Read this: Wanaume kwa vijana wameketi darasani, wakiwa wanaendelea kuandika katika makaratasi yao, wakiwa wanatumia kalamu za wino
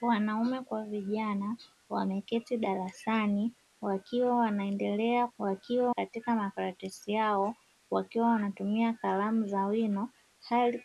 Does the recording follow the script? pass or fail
fail